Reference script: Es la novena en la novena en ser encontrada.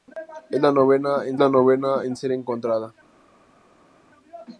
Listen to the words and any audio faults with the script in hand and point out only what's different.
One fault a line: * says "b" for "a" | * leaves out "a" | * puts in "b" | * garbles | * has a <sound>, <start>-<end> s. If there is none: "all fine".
all fine